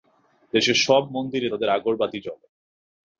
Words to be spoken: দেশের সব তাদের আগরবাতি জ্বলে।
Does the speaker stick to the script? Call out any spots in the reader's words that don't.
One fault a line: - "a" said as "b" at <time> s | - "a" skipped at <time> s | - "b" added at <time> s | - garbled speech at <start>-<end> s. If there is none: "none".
- "মন্দিরে" added at 1.1 s